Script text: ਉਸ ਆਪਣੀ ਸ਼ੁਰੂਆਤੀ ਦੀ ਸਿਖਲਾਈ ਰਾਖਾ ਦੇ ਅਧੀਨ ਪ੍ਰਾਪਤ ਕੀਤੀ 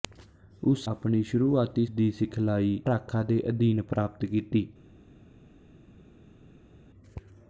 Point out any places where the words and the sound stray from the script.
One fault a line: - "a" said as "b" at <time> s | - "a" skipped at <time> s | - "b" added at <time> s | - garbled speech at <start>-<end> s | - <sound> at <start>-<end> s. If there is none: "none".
none